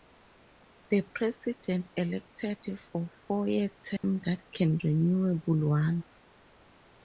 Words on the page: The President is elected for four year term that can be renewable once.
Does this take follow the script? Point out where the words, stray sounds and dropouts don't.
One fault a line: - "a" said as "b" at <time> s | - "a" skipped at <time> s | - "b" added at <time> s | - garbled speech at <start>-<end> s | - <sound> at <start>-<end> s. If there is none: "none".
- "is" skipped at 1.9 s
- dropout at 4.0-4.0 s
- "be" skipped at 4.8 s